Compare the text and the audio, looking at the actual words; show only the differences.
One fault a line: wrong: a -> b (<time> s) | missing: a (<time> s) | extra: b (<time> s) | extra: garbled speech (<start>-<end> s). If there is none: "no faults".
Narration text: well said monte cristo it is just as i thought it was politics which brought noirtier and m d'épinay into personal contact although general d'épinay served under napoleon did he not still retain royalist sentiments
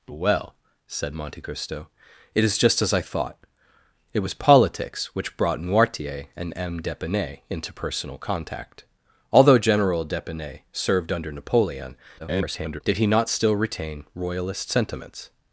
extra: garbled speech (12.2-12.8 s)